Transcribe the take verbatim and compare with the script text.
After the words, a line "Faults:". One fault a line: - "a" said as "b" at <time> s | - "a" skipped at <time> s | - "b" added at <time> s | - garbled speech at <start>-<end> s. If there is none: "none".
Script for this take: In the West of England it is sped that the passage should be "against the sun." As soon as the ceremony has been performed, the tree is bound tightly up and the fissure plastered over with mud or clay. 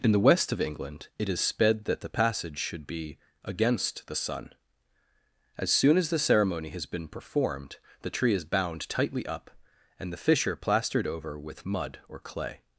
In the West of England it is sped that the passage should be "against the sun." As soon as the ceremony has been performed, the tree is bound tightly up and the fissure plastered over with mud or clay.
Faults:
none